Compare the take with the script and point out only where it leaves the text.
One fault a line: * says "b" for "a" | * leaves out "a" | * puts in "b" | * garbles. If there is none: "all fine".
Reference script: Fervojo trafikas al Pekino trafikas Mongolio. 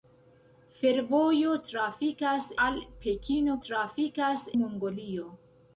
all fine